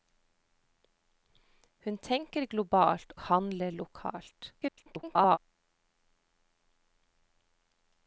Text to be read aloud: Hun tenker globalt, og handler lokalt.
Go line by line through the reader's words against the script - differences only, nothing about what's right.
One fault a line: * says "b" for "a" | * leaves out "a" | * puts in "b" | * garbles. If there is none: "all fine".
* leaves out "og"
* garbles